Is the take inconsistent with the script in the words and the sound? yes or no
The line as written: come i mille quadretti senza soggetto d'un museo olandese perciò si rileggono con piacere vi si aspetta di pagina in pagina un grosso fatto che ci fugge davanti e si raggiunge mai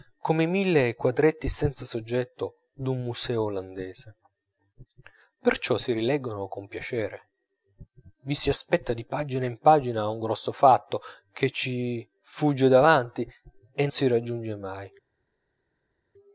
no